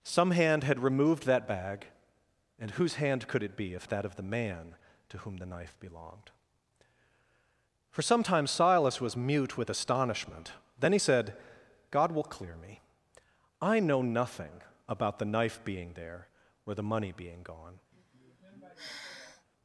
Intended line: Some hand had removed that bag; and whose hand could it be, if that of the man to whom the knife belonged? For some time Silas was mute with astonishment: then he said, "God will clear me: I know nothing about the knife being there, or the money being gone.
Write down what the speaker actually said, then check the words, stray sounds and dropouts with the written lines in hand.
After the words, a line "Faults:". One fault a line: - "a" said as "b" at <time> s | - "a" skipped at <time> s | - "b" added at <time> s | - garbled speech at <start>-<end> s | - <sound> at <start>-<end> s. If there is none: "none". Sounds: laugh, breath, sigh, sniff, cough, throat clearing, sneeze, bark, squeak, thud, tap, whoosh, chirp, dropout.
Some hand had removed that bag; and whose hand could it be, if that of the man to whom the knife belonged? For some time Silas was mute with astonishment: then he said, "God will clear me: I know nothing about the knife being there, or the money being gone.
Faults:
- sigh at 17.9-19.5 s